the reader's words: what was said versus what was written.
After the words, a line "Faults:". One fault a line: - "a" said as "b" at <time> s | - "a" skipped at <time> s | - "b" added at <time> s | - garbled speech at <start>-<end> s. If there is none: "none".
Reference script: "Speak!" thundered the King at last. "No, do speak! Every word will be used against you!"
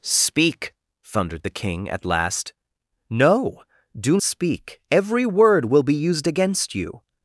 "Speak!" thundered the King at last. "No, do speak! Every word will be used against you!"
Faults:
none